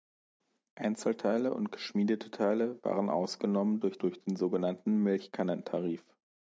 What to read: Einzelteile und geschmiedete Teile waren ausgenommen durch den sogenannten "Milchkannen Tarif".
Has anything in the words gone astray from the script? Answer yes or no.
yes